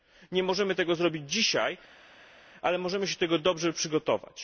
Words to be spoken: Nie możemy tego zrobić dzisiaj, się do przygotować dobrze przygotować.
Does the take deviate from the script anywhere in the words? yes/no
yes